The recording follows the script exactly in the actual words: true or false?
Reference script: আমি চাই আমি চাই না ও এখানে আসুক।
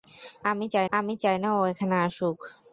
true